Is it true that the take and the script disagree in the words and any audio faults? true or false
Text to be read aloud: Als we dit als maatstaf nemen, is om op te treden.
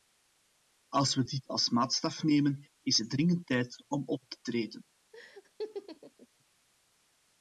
true